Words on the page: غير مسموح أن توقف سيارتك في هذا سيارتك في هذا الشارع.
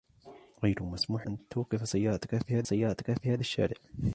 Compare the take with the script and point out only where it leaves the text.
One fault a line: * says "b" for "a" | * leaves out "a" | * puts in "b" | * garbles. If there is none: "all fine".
all fine